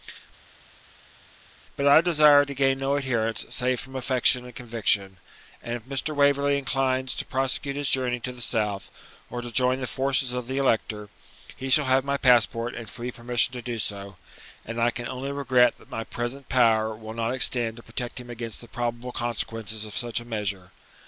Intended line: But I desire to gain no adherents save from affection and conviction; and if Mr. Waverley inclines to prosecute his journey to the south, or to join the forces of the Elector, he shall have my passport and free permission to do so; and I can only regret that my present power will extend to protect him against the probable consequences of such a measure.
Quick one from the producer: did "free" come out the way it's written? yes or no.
yes